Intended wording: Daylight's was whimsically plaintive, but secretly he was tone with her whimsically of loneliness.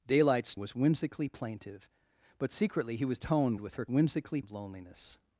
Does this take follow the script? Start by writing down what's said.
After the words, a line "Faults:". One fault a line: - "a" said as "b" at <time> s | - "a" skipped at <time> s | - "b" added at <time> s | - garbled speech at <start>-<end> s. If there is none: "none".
Daylight's was whimsically plaintive, but secretly he was tone with her whimsically of loneliness.
Faults:
none